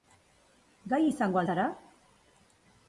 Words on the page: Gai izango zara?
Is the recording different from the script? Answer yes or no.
no